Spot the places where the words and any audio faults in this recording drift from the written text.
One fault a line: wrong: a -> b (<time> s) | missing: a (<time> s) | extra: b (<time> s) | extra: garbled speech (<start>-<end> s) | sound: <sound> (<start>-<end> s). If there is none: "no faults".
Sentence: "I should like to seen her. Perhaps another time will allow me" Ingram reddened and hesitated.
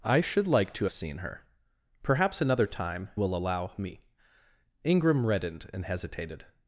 no faults